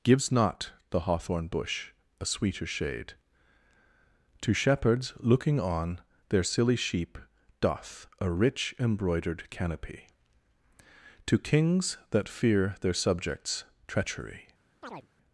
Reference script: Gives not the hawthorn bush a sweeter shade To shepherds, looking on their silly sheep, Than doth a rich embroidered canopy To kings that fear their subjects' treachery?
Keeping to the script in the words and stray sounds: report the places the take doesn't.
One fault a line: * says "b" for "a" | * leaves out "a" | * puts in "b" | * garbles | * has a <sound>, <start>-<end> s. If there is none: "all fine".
* leaves out "Than"
* has a chirp, 14.8-15.1 s